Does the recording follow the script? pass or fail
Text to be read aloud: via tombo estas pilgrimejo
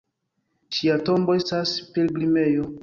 fail